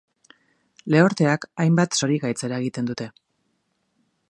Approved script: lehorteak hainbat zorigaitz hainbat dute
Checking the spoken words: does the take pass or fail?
fail